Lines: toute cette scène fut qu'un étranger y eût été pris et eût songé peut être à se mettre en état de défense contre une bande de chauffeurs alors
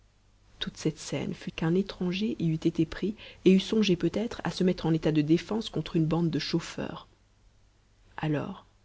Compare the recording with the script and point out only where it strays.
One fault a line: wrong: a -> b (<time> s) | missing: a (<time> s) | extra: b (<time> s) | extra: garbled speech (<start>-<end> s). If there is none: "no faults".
no faults